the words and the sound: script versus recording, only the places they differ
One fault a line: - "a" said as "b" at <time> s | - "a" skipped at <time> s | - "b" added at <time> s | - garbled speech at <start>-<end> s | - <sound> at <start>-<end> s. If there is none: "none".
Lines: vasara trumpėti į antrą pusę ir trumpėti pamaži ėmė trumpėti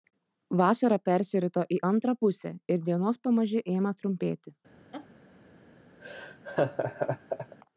- "trumpėti" said as "persirito" at 1.1 s
- "trumpėti" said as "dienos" at 2.9 s
- laugh at 4.9-5.1 s
- laugh at 6.0-7.6 s